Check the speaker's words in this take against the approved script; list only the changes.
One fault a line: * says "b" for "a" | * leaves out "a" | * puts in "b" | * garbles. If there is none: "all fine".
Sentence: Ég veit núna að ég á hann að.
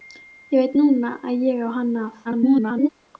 * garbles